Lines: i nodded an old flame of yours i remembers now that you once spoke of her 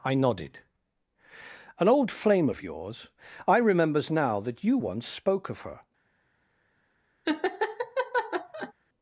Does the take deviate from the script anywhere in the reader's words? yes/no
no